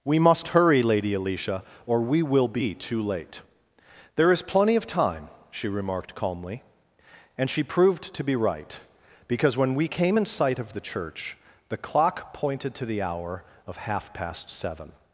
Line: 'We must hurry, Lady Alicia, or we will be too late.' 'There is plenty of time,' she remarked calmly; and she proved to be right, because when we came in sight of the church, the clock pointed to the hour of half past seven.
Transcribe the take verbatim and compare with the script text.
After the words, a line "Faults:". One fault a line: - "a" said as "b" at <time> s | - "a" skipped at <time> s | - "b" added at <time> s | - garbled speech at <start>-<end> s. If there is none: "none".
'We must hurry, Lady Alicia, or we will be too late.' 'There is plenty of time,' she remarked calmly; and she proved to be right, because when we came in sight of the church, the clock pointed to the hour of half past seven.
Faults:
none